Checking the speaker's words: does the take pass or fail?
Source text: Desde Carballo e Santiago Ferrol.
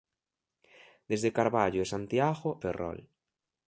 pass